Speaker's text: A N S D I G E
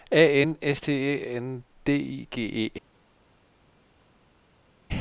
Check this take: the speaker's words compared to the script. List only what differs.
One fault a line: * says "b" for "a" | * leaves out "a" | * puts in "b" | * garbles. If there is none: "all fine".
* puts in "T Æ N"